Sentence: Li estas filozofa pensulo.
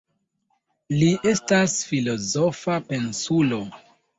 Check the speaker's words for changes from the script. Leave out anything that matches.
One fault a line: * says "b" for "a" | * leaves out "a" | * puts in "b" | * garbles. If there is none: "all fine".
all fine